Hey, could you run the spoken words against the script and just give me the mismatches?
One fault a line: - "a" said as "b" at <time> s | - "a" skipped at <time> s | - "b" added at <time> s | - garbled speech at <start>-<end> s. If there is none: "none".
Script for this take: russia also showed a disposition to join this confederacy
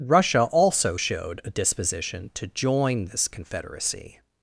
none